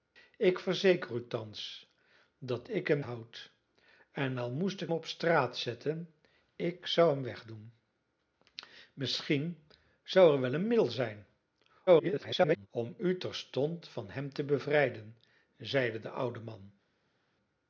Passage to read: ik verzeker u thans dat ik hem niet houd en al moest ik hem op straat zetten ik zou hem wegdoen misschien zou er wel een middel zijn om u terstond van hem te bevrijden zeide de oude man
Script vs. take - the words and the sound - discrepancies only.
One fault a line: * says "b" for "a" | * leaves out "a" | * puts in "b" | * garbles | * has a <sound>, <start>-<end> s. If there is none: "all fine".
* leaves out "niet"
* leaves out "hem"
* garbles